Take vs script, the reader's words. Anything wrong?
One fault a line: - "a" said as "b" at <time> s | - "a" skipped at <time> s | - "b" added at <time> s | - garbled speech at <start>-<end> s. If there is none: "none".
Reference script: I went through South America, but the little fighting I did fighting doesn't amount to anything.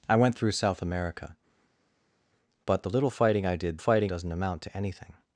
none